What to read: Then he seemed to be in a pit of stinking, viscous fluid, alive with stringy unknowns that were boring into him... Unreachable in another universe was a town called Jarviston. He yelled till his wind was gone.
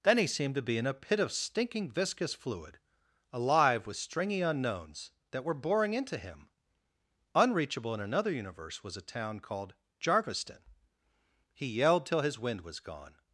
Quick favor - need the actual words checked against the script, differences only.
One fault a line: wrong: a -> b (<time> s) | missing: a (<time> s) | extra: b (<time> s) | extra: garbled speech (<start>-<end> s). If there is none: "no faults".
no faults